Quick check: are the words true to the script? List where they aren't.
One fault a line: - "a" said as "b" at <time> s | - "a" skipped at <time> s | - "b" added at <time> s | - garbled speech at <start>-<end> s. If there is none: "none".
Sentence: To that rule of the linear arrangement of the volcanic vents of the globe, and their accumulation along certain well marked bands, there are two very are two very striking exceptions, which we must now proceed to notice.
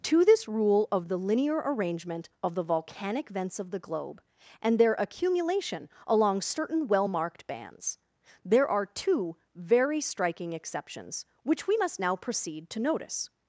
- "that" said as "this" at 0.2 s
- "are two very" skipped at 10.0 s